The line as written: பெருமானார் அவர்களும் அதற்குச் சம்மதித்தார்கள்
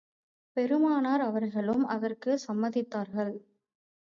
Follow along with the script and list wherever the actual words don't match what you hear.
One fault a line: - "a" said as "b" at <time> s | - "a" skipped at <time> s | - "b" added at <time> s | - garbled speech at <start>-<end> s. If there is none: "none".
none